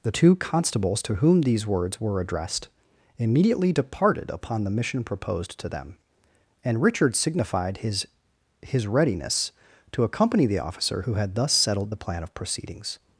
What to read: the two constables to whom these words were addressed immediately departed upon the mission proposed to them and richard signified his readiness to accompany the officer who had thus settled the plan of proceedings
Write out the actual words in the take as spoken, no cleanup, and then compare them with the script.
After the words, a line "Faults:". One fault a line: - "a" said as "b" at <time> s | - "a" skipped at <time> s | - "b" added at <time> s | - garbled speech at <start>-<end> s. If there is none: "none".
the two constables to whom these words were addressed immediately departed upon the mission proposed to them and richard signified his his readiness to accompany the officer who had thus settled the plan of proceedings
Faults:
- "his" added at 8.6 s